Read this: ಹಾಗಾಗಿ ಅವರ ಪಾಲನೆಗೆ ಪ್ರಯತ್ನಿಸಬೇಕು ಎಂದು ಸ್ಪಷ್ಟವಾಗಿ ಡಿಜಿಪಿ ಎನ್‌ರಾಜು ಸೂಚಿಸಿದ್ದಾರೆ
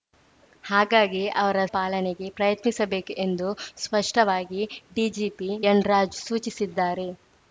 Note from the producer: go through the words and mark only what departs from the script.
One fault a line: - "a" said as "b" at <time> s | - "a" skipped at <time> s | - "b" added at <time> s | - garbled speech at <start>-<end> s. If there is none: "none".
none